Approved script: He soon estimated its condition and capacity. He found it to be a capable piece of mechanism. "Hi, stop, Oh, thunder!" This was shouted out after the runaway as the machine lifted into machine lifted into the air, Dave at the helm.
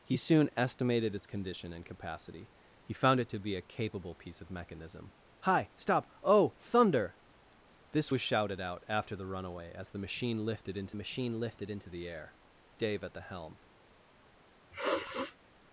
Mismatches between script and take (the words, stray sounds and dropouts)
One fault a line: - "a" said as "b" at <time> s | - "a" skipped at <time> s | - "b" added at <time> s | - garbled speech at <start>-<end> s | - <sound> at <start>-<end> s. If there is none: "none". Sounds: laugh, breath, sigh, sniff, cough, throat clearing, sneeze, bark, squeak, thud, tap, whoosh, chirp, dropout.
- sniff at 14.7-15.4 s